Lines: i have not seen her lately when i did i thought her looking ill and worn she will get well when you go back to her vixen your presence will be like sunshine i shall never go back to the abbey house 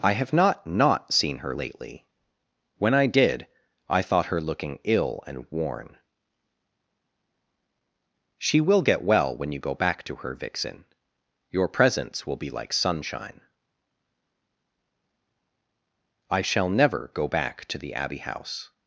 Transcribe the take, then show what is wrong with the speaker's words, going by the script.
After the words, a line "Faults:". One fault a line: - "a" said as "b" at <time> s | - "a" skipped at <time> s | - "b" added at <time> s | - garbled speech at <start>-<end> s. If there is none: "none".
i have not not seen her lately when i did i thought her looking ill and worn she will get well when you go back to her vixen your presence will be like sunshine i shall never go back to the abbey house
Faults:
- "not" added at 0.7 s